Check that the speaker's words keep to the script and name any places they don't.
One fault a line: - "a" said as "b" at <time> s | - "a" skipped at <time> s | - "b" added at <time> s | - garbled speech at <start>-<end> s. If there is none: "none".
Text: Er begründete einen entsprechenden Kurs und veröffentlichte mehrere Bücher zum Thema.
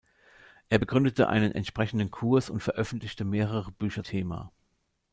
- "zum" skipped at 4.0 s